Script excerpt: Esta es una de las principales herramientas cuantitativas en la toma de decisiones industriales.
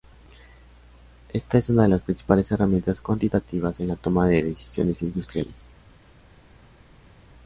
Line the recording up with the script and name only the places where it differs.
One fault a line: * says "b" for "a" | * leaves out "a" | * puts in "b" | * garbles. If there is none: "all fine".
all fine